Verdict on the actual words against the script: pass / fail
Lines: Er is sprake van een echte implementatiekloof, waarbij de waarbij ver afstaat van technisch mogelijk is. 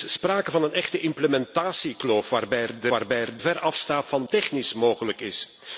pass